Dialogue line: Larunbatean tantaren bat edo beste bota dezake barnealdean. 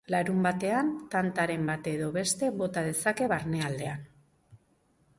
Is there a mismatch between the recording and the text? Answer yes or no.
no